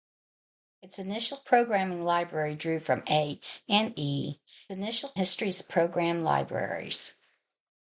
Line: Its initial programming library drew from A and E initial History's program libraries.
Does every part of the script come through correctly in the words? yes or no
yes